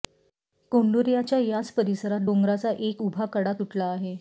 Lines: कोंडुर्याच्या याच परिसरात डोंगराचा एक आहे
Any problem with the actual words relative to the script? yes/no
yes